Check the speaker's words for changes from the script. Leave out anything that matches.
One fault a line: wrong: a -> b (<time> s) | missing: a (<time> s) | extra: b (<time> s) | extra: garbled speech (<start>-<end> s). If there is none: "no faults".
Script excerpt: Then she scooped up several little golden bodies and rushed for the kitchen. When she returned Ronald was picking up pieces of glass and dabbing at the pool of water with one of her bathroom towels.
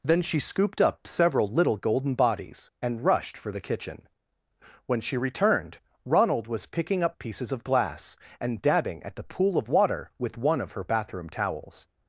no faults